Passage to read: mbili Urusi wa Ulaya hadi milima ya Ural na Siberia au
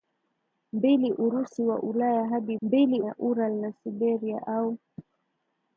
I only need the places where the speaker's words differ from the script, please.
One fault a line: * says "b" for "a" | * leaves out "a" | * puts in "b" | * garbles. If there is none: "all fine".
* says "mbili" for "milima"